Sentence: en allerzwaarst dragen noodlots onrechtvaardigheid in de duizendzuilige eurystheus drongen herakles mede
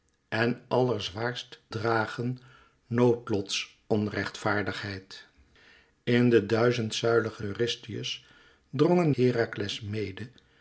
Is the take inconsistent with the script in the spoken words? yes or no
no